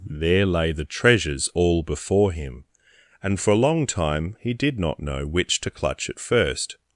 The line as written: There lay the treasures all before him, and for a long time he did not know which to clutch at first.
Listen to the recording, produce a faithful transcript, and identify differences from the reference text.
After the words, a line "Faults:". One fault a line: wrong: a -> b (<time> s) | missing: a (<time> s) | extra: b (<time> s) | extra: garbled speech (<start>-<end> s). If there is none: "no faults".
There lay the treasures all before him, and for a long time he did not know which to clutch at first.
Faults:
no faults